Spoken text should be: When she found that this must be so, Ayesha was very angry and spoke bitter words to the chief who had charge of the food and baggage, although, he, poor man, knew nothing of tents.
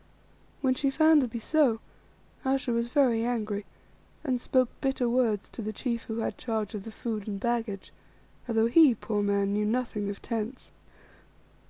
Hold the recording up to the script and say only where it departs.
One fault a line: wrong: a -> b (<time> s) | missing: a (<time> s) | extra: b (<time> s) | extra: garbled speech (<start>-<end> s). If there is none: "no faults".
missing: this must (1.3 s)